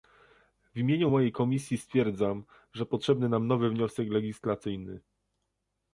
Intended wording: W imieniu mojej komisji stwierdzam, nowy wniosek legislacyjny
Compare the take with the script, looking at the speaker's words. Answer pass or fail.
fail